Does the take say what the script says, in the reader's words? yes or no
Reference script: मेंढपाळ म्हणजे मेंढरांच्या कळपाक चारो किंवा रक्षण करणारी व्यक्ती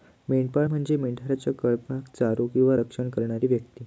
yes